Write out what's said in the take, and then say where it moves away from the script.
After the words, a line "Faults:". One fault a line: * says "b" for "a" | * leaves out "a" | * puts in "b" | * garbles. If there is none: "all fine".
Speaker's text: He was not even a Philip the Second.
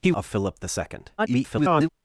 He a Philip the Second. [garbled]
Faults:
* leaves out "was not even"
* garbles